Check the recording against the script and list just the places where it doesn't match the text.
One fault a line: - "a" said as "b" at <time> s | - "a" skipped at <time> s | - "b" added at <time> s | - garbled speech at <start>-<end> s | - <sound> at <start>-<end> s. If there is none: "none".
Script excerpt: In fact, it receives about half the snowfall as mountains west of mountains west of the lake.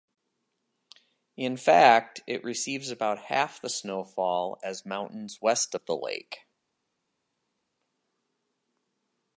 - "mountains west of" skipped at 5.8 s